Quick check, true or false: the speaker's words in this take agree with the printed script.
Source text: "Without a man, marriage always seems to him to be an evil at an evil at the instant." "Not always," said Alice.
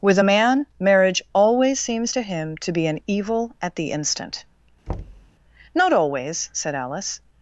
false